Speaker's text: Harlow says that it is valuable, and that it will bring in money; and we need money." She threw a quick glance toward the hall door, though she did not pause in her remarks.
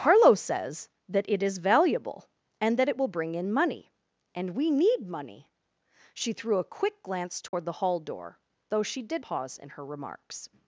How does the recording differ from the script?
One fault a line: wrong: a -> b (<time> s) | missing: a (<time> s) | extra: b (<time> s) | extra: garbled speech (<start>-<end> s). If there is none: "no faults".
missing: not (9.2 s)